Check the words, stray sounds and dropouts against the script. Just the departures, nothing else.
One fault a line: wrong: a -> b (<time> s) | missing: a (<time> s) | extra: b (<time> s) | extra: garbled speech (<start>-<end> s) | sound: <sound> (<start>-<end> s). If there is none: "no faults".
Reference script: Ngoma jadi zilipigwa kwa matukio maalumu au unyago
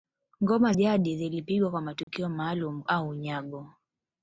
sound: dropout (2.0-2.1 s)